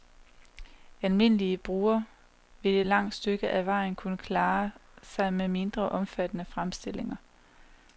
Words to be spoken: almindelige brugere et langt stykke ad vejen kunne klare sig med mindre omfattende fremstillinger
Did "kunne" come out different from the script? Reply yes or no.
no